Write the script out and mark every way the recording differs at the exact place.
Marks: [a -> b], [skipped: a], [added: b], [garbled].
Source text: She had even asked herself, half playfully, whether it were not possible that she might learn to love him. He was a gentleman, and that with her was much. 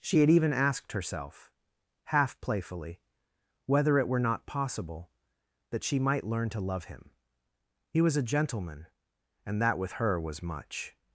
She had even asked herself, half playfully, whether it were not possible that she might learn to love him. He was a gentleman, and that with her was much.